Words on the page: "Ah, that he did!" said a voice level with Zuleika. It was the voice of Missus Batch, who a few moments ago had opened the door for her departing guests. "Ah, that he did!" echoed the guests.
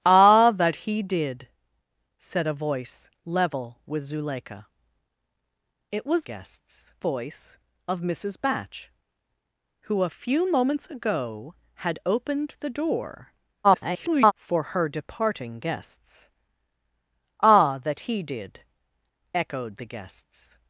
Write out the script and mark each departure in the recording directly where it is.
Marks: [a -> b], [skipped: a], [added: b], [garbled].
"Ah, that he did!" said a voice level with Zuleika. It was [the -> guests] voice of Missus Batch, who a few moments ago had opened the door [garbled] for her departing guests. "Ah, that he did!" echoed the guests.